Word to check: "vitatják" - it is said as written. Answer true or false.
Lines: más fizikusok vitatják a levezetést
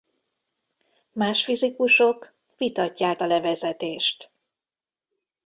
true